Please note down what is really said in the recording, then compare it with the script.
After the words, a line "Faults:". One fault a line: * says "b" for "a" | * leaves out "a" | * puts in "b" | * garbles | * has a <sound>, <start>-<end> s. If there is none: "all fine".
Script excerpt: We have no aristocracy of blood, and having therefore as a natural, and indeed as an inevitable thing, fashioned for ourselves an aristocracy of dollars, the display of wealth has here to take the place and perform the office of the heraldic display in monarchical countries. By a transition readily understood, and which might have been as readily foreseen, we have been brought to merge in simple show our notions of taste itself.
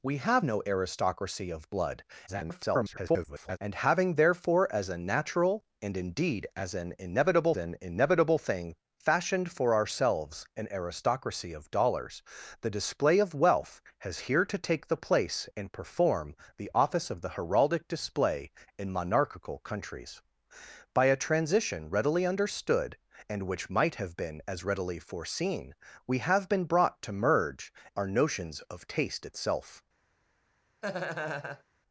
We have no aristocracy of blood, [garbled] and having therefore as a natural, and indeed as an inevitable an inevitable thing, fashioned for ourselves an aristocracy of dollars, the display of wealth has here to take the place and perform the office of the heraldic display in monarchical countries. By a transition readily understood, and which might have been as readily foreseen, we have been brought to merge our notions of taste itself.
Faults:
* garbles
* puts in "an inevitable"
* leaves out "in simple show"
* has a laugh, 30.8-31.6 s